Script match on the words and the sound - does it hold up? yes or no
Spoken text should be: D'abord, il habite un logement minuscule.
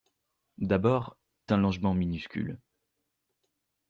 no